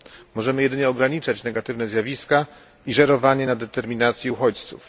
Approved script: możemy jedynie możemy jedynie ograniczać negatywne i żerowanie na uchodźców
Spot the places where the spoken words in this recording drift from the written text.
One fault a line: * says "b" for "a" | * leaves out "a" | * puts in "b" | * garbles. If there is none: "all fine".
* leaves out "możemy jedynie"
* puts in "zjawiska"
* puts in "determinacji"